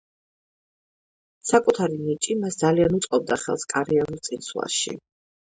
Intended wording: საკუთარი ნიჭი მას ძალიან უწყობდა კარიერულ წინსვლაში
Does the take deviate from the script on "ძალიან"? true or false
false